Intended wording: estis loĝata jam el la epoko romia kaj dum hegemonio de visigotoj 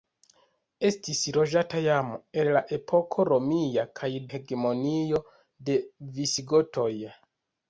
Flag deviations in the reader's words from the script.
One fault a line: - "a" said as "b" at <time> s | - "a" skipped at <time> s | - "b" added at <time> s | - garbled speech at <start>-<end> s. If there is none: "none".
- "dum" skipped at 4.1 s